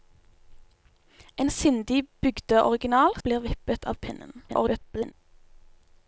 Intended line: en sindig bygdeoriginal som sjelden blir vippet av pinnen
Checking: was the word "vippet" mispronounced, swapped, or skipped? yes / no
no